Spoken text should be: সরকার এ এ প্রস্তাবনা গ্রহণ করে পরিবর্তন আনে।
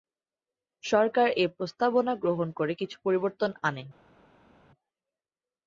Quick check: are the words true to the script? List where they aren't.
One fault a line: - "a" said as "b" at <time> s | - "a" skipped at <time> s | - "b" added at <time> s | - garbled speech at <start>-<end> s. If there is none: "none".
- "এ" skipped at 1.6 s
- "কিছু" added at 2.7 s